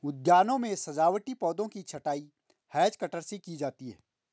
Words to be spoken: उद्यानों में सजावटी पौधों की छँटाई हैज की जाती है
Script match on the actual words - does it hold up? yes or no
no